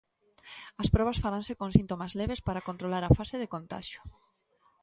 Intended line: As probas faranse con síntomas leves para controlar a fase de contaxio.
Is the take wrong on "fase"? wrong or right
right